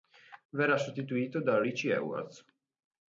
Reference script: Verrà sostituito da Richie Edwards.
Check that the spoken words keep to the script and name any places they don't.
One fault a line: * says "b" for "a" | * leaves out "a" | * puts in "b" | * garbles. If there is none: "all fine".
all fine